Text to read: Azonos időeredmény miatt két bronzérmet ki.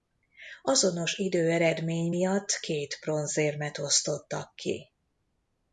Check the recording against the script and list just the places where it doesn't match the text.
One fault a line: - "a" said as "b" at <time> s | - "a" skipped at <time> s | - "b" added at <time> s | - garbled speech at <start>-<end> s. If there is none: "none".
- "osztottak" added at 3.8 s